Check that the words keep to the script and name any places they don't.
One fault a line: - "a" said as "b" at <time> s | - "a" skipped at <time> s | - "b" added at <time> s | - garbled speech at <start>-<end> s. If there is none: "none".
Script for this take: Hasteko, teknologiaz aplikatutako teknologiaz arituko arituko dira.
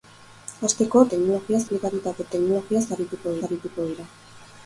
none